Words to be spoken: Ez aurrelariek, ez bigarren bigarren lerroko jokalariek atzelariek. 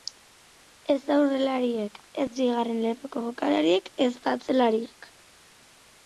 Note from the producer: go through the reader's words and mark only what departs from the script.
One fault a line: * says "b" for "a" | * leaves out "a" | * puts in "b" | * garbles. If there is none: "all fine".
* leaves out "bigarren"
* puts in "ezta"